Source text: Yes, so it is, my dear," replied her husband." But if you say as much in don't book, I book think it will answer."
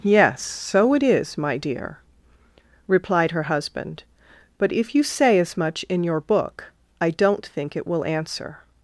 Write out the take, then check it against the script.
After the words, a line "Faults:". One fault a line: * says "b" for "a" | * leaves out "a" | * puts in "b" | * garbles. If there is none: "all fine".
Yes, so it is, my dear," replied her husband." But if you say as much in your book, I don't think it will answer."
Faults:
* says "your" for "don't"
* says "don't" for "book"